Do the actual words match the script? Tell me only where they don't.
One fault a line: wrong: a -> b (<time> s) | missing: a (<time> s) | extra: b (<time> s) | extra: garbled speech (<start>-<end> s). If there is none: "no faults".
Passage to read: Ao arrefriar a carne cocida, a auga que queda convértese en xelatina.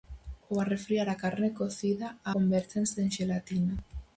missing: auga que queda (2.3 s)